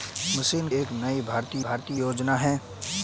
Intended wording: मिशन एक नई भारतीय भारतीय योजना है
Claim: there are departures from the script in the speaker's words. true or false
false